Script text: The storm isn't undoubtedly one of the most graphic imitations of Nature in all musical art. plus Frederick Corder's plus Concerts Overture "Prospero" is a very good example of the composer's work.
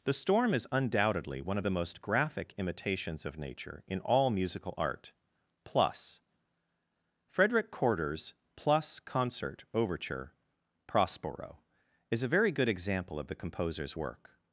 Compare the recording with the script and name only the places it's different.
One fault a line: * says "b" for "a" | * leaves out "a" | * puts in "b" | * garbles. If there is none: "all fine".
* says "is" for "isn't"
* says "Concert" for "Concerts"